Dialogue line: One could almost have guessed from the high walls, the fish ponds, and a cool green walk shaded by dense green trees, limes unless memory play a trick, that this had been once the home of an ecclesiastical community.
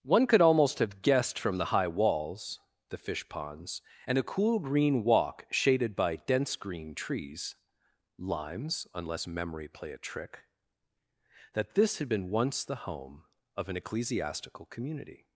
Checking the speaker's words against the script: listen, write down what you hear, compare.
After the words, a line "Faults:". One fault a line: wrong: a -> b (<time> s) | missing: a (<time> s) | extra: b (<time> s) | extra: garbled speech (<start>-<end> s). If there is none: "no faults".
One could almost have guessed from the high walls, the fish ponds, and a cool green walk shaded by dense green trees, limes unless memory play a trick, that this had been once the home of an ecclesiastical community.
Faults:
no faults